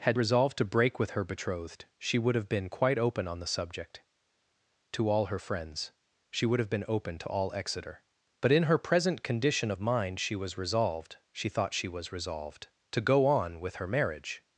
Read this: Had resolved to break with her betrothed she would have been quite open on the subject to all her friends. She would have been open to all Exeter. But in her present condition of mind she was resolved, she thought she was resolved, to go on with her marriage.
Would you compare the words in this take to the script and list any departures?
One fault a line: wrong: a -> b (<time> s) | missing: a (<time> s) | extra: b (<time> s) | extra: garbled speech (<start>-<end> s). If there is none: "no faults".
no faults